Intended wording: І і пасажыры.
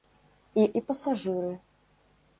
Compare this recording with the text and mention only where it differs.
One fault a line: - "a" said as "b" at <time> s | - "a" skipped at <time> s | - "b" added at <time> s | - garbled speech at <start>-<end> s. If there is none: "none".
none